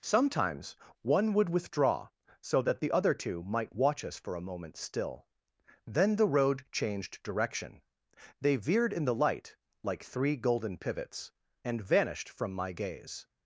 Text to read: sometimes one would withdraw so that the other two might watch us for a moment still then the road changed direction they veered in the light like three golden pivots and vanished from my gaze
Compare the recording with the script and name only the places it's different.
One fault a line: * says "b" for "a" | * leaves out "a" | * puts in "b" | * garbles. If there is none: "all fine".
all fine